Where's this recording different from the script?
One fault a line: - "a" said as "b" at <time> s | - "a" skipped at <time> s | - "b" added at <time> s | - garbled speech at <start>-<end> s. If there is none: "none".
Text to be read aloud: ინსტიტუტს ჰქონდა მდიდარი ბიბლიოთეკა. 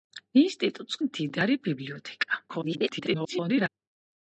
- "ჰქონდა" skipped at 1.0 s
- garbled speech at 2.5-3.7 s